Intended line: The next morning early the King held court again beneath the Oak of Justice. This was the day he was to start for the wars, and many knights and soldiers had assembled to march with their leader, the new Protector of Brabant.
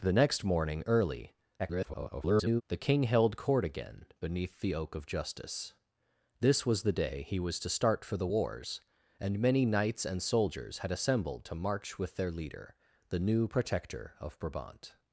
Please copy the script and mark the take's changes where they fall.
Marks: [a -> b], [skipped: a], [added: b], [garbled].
The next morning early [garbled] the King held court again beneath the Oak of Justice. This was the day he was to start for the wars, and many knights and soldiers had assembled to march with their leader, the new Protector of Brabant.